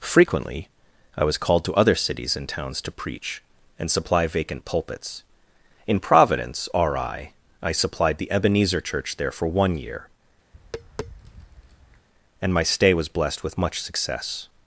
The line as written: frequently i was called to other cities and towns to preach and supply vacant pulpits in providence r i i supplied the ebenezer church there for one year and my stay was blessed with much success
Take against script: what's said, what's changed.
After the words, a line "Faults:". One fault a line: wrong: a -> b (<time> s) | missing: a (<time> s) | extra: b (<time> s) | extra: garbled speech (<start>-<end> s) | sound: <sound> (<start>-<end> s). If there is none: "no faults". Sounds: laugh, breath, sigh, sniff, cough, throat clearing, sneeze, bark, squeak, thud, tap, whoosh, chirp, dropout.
frequently i was called to other cities and towns to preach and supply vacant pulpits in providence r i i supplied the ebenezer church there for one year and my stay was blessed with much success
Faults:
sound: tap (10.5-12.1 s)